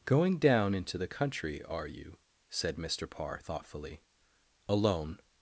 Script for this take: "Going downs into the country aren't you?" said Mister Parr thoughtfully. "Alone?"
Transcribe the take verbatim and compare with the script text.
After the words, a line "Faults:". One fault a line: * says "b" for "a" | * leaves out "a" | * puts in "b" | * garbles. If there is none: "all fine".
"Going down into the country are you?" said Mister Parr thoughtfully. "Alone?"
Faults:
* says "down" for "downs"
* says "are" for "aren't"